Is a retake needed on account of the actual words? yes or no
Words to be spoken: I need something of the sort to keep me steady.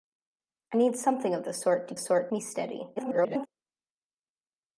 yes